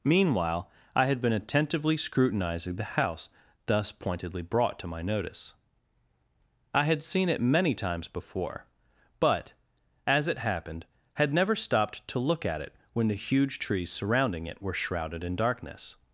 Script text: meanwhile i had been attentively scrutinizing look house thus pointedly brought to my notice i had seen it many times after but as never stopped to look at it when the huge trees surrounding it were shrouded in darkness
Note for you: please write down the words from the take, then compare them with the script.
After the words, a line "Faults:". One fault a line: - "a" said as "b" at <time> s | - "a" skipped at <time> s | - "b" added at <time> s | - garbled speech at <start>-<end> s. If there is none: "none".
meanwhile i had been attentively scrutinizing the house thus pointedly brought to my notice i had seen it many times before but as it happened had never stopped to look at it when the huge trees surrounding it were shrouded in darkness
Faults:
- "look" said as "the" at 2.8 s
- "after" said as "before" at 8.1 s
- "it happened had" added at 10.3 s